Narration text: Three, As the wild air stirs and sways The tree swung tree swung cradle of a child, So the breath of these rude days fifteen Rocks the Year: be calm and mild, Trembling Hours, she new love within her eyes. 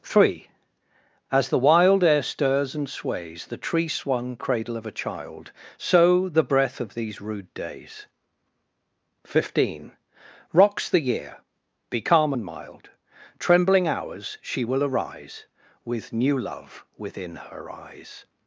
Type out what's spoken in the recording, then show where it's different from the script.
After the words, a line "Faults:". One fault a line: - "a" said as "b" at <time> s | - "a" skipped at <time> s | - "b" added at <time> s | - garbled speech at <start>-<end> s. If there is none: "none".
Three, As the wild air stirs and sways The tree swung cradle of a child, So the breath of these rude days fifteen Rocks the Year: be calm and mild, Trembling Hours, she will arise With new love within her eyes.
Faults:
- "tree swung" skipped at 4.4 s
- "will arise With" added at 14.6 s